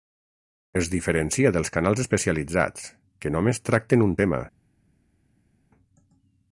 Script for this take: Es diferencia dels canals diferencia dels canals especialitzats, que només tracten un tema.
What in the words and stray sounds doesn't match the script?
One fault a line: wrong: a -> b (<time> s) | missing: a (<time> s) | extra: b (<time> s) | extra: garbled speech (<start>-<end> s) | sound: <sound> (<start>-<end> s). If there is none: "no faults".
missing: diferencia dels canals (2.0 s)